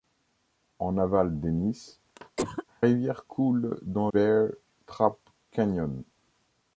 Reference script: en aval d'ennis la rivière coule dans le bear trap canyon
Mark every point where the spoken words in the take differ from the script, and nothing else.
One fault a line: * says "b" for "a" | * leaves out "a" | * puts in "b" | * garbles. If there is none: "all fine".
* leaves out "la"
* leaves out "le"